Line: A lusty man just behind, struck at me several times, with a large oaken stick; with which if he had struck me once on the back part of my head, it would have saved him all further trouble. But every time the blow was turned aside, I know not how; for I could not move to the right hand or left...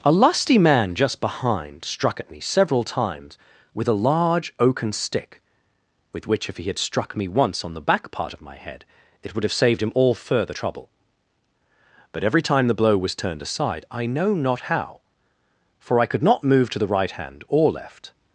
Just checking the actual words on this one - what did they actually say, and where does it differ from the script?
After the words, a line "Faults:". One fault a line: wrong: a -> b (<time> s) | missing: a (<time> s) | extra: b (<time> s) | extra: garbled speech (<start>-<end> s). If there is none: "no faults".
A lusty man just behind, struck at me several times, with a large oaken stick; with which if he had struck me once on the back part of my head, it would have saved him all further trouble. But every time the blow was turned aside, I know not how; for I could not move to the right hand or left...
Faults:
no faults